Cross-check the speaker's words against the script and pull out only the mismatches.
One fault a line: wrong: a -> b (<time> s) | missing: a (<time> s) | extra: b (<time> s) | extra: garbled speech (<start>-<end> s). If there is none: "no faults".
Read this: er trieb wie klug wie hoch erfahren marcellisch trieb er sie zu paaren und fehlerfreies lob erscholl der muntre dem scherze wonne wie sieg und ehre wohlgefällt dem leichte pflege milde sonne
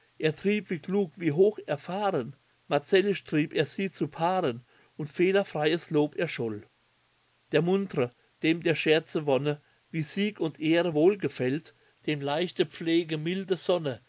extra: der (8.6 s)